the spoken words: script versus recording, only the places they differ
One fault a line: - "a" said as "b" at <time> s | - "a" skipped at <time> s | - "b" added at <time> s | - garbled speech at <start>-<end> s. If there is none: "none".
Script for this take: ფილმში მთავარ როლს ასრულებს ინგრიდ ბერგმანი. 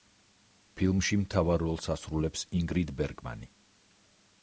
none